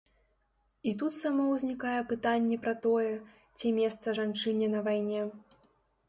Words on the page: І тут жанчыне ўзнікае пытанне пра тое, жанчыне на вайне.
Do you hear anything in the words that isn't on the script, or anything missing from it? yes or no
yes